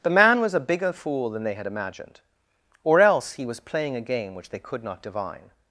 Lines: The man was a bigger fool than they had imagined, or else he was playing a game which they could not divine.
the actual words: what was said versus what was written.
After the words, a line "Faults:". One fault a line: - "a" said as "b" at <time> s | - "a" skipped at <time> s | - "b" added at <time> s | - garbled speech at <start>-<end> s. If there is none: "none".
The man was a bigger fool than they had imagined, or else he was playing a game which they could not divine.
Faults:
none